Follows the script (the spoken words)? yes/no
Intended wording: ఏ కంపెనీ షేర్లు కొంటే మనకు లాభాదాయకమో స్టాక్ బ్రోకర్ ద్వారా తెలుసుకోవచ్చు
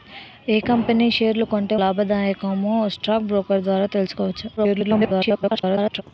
no